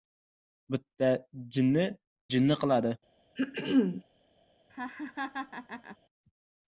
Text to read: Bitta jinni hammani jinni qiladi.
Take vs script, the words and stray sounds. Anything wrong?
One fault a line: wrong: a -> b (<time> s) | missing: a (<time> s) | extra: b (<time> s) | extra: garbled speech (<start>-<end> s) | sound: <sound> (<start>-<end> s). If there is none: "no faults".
missing: hammani (1.9 s)
sound: throat clearing (3.4-4.0 s)
sound: laugh (4.7-6.0 s)